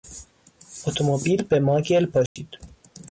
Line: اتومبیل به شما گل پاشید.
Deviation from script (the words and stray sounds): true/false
true